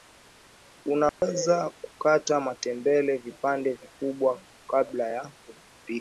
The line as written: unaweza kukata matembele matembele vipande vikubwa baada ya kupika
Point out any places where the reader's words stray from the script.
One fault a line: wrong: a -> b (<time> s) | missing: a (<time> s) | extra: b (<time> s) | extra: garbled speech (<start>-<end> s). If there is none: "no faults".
missing: matembele (3.2 s)
wrong: baada -> kabla (4.7 s)